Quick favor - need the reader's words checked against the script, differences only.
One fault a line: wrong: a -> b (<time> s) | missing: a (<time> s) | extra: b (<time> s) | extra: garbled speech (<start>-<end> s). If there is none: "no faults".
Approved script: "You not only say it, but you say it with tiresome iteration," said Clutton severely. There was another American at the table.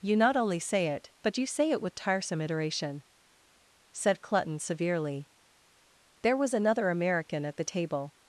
no faults